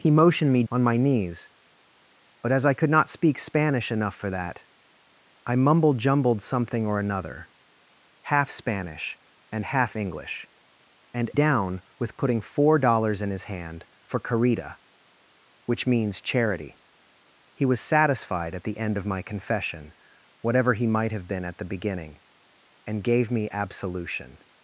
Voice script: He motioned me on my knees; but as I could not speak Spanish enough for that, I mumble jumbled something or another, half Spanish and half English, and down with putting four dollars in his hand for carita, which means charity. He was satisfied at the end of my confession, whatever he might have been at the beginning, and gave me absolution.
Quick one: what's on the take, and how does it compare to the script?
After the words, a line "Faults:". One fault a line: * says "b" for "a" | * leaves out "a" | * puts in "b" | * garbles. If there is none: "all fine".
He motioned me on my knees; but as I could not speak Spanish enough for that, I mumble jumbled something or another, half Spanish and half English, and down with putting four dollars in his hand for carita, which means charity. He was satisfied at the end of my confession, whatever he might have been at the beginning, and gave me absolution.
Faults:
all fine